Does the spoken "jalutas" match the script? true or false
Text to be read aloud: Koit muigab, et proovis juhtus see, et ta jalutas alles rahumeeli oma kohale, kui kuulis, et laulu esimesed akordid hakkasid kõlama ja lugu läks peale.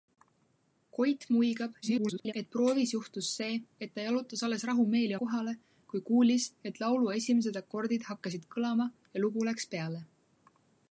true